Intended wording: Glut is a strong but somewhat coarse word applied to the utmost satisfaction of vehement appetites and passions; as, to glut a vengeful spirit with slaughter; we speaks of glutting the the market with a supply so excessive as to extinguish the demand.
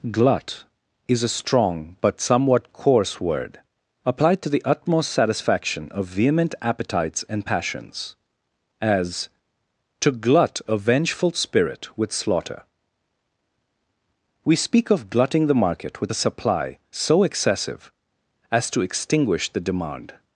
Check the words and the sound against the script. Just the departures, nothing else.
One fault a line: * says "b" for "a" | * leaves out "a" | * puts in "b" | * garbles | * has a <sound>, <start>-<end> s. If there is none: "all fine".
* says "speak" for "speaks"
* leaves out "the"